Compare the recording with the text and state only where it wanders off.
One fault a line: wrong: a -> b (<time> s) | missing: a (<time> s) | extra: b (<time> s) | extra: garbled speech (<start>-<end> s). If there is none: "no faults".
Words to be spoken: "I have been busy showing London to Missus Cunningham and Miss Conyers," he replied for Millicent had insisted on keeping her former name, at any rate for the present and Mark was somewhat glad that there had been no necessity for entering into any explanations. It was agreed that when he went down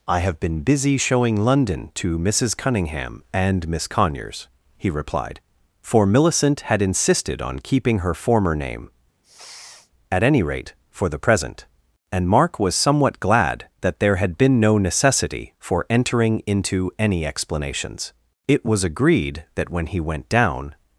no faults